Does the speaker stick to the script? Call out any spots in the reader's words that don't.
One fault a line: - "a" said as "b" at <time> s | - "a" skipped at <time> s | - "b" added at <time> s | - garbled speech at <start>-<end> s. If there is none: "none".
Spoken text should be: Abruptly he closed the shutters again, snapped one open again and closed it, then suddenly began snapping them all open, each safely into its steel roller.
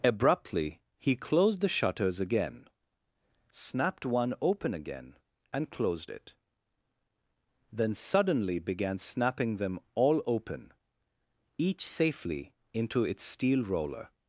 none